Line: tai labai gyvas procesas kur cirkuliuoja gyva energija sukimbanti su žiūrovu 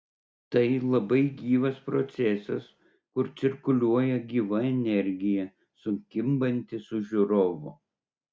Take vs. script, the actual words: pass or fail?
pass